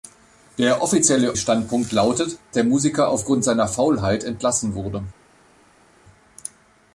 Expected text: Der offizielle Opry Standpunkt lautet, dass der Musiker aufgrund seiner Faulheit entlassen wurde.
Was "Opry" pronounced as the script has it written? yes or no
no